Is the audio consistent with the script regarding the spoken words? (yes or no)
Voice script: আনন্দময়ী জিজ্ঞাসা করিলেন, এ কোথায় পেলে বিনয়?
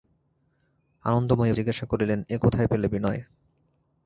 yes